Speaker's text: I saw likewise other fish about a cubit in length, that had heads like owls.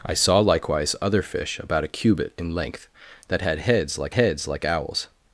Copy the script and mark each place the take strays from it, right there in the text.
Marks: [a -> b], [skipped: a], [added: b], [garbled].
I saw likewise other fish about a cubit in length, that had heads like [added: heads like] owls.